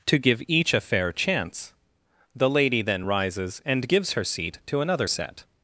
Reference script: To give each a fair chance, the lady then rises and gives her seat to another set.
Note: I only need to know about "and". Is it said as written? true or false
true